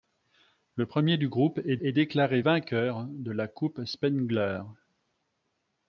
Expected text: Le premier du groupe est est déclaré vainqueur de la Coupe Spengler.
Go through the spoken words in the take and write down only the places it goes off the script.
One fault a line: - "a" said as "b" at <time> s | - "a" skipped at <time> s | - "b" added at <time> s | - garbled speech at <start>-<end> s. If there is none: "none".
none